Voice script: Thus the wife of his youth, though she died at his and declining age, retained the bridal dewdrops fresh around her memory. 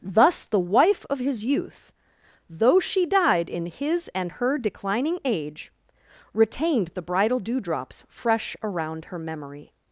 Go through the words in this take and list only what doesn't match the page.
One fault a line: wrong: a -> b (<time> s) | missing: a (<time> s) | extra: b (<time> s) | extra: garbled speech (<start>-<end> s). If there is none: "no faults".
wrong: at -> in (3.5 s)
extra: her (4.3 s)